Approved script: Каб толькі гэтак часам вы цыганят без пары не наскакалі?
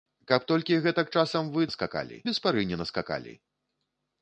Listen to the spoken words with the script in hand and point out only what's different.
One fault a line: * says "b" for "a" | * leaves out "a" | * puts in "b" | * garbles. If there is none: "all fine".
* says "наскакалі" for "цыганят"